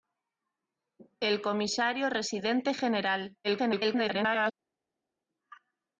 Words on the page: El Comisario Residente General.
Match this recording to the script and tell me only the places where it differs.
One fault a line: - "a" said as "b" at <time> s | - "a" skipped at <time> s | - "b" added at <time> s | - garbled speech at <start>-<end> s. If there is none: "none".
- garbled speech at 3.4-4.5 s